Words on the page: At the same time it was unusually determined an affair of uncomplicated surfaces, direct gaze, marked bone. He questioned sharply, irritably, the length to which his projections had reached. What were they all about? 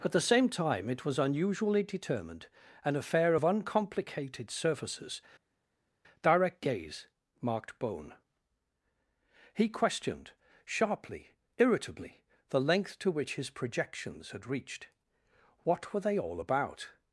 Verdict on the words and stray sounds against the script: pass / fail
pass